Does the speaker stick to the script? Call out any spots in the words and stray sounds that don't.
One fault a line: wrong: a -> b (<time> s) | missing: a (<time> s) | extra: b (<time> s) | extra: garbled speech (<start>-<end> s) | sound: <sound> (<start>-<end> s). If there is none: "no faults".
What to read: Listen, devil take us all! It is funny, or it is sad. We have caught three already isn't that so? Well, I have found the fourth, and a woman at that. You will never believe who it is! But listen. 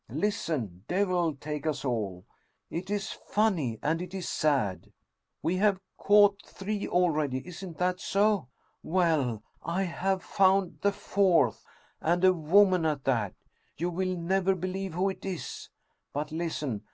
wrong: or -> and (3.8 s)